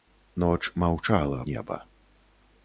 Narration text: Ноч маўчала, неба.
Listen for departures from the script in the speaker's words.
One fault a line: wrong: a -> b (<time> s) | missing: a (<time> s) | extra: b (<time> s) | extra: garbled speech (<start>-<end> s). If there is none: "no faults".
no faults